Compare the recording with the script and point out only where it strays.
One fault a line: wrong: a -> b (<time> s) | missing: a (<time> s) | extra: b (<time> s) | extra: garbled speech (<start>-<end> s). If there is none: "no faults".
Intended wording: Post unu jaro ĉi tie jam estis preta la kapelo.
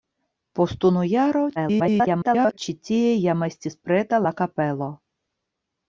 extra: garbled speech (1.6-2.6 s)